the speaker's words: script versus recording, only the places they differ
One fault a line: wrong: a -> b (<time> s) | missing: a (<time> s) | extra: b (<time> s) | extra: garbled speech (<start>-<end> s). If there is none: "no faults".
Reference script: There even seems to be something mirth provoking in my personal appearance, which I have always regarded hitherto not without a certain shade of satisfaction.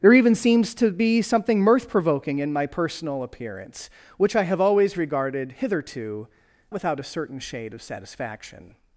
missing: not (6.3 s)